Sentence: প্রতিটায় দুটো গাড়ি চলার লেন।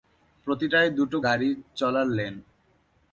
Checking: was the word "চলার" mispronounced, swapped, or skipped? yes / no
no